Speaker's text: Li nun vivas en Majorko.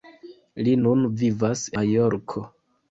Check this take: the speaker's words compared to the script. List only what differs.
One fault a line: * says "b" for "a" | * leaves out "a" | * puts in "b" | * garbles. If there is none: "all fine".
* leaves out "en"